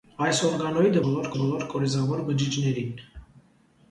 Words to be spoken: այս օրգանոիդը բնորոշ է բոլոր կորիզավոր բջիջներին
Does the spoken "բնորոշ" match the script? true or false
false